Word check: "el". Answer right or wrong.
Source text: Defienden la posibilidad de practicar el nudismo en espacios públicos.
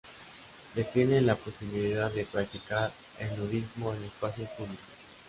right